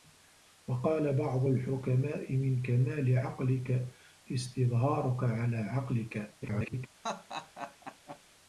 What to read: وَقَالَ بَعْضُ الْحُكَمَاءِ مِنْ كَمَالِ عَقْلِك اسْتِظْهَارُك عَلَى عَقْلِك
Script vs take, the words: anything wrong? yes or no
yes